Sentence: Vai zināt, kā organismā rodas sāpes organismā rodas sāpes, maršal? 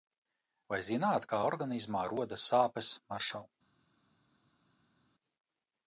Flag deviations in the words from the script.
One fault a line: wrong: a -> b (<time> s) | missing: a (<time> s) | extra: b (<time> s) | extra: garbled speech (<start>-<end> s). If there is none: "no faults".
missing: organismā rodas sāpes (3.0 s)